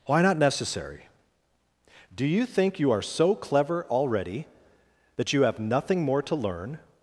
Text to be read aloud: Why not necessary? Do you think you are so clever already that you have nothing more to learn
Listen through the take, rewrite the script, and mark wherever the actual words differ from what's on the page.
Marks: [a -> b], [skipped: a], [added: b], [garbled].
Why not necessary? Do you think you are so clever already that you have nothing more to learn